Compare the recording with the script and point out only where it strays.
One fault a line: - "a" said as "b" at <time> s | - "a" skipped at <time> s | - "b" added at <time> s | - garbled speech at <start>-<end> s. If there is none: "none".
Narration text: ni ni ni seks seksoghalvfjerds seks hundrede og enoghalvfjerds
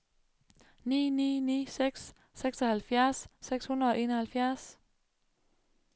none